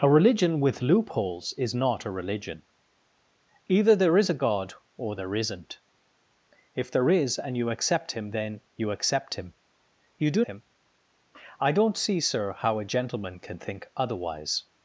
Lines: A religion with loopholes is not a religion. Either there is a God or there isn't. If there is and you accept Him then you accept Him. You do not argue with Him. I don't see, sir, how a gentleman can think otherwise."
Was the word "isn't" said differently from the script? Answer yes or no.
no